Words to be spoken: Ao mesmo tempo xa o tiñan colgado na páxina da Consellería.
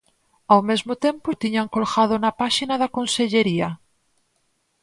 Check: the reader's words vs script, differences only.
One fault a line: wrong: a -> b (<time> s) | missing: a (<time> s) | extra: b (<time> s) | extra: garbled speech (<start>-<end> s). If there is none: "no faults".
missing: xa (1.3 s)